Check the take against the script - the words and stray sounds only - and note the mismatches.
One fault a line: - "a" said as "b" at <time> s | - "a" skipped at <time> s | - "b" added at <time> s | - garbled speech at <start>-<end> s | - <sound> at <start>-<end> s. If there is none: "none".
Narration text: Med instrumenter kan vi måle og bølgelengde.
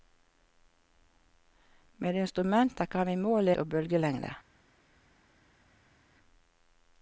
none